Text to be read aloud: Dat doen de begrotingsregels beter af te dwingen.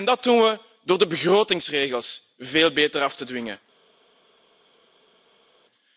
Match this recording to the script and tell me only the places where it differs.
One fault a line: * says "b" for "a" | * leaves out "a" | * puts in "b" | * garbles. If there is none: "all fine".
* puts in "we door"
* puts in "veel"